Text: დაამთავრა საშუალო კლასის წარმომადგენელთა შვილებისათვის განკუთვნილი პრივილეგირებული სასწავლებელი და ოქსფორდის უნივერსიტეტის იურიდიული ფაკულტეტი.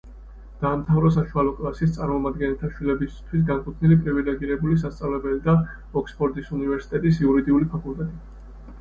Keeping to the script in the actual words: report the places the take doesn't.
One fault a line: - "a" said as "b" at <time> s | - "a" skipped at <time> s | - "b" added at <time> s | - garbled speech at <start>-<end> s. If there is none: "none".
none